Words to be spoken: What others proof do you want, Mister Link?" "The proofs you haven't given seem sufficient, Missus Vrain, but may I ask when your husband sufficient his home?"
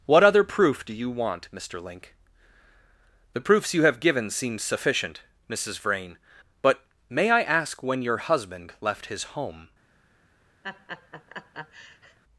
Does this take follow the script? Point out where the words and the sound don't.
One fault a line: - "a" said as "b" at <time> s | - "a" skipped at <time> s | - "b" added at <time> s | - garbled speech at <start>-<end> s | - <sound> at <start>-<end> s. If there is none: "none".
- "others" said as "other" at 0.2 s
- "haven't" said as "have" at 3.8 s
- "sufficient" said as "left" at 8.8 s
- laugh at 10.6-12.2 s